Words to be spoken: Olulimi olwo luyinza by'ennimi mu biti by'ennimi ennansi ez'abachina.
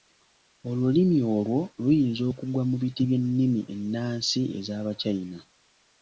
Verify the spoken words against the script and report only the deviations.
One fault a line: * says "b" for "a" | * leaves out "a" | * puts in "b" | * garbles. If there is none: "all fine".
* says "okugwa" for "by'ennimi"